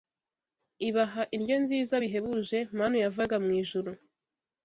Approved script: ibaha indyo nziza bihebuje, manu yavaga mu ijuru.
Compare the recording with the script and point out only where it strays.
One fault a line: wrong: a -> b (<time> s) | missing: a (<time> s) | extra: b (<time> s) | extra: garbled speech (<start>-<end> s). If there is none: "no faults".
no faults